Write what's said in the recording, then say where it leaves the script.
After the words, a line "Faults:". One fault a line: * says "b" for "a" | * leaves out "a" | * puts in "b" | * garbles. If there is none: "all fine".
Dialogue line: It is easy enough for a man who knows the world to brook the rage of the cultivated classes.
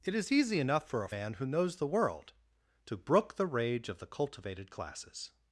It is easy enough for a man who knows the world to brook the rage of the cultivated classes.
Faults:
all fine